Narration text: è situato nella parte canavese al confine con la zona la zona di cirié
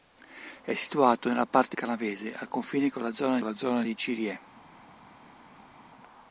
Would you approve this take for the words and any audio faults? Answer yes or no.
yes